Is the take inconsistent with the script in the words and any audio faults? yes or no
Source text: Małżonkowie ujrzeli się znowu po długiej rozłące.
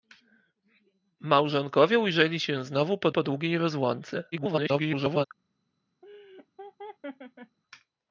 yes